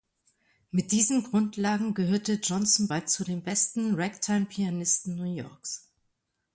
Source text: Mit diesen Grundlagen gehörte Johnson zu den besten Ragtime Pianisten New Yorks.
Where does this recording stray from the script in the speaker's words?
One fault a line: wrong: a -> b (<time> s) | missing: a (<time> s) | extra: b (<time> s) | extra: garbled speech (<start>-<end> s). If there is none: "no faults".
extra: bald (2.9 s)